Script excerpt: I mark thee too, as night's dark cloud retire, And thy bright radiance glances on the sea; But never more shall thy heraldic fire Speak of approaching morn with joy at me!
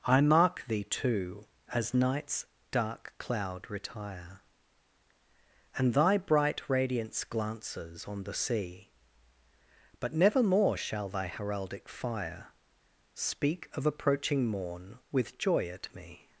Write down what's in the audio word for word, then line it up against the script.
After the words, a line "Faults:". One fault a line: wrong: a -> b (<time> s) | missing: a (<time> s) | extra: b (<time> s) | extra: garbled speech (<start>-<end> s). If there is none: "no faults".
I mark thee too, as night's dark cloud retire, And thy bright radiance glances on the sea; But never more shall thy heraldic fire Speak of approaching morn with joy at me!
Faults:
no faults